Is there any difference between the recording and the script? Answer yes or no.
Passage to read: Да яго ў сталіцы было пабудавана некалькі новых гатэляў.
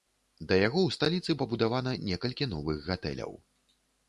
yes